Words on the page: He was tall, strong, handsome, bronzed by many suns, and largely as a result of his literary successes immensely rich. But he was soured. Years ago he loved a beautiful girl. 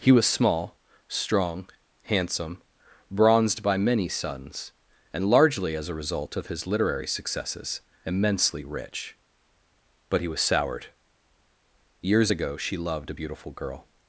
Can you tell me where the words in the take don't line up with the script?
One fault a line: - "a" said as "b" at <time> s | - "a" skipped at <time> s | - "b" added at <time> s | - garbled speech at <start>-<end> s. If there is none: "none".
- "tall" said as "small" at 0.2 s
- "he" said as "she" at 12.6 s